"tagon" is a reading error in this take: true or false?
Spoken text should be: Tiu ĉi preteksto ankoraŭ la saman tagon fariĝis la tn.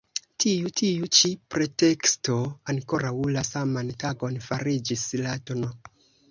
false